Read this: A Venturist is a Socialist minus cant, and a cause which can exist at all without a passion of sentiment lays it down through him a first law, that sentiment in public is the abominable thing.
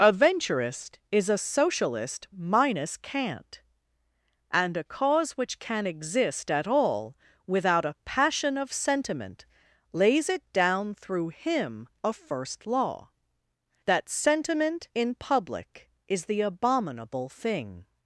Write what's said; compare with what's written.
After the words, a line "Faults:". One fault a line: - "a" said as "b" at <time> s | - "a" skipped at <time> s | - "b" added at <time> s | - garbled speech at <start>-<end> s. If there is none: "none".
A Venturist is a Socialist minus cant, and a cause which can exist at all without a passion of sentiment lays it down through him a first law, that sentiment in public is the abominable thing.
Faults:
none